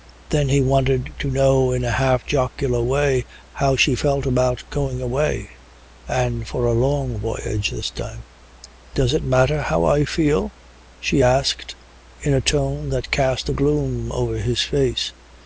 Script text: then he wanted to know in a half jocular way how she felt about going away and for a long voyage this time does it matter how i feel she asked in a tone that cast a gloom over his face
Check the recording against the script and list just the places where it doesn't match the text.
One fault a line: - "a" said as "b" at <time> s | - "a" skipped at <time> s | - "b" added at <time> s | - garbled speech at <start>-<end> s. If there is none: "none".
none